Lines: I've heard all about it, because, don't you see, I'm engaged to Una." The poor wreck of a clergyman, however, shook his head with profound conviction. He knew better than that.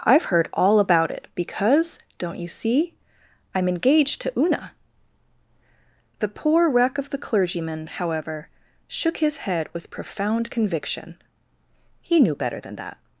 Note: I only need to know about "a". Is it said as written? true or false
false